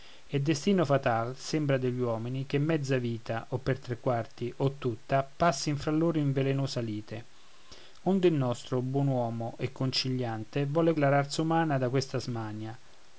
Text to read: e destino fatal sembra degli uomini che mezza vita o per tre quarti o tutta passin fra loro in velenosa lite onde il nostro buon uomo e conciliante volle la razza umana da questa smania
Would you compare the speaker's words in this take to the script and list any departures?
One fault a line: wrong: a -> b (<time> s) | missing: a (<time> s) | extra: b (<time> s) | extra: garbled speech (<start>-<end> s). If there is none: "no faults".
no faults